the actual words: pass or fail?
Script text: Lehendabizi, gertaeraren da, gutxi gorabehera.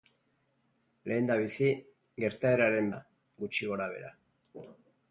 pass